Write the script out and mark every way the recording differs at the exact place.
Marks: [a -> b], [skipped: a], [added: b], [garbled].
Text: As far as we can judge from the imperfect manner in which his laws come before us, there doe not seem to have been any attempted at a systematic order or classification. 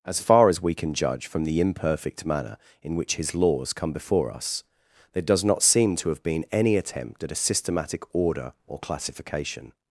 As far as we can judge from the imperfect manner in which his laws come before us, there [doe -> does] not seem to have been any [attempted -> attempt] at a systematic order or classification.